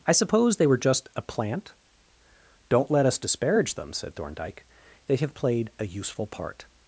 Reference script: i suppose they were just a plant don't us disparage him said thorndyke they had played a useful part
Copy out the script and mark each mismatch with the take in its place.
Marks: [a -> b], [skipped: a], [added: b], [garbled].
i suppose they were just a plant don't [added: let] us disparage [him -> them] said thorndyke they [had -> have] played a useful part